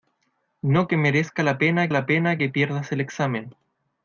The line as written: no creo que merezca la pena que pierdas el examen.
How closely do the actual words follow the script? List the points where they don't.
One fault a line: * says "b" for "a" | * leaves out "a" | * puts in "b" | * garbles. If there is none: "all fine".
* leaves out "creo"
* puts in "la pena"